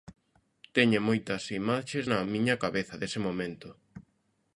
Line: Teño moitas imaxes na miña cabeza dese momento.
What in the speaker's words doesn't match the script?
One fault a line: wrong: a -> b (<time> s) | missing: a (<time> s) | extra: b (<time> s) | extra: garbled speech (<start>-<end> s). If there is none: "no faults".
no faults